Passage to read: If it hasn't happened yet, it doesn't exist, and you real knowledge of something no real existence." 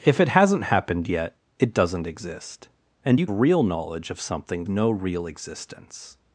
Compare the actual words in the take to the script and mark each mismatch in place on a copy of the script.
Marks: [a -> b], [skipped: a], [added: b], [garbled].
If it hasn't happened yet, it doesn't exist, and you real knowledge of something no real existence."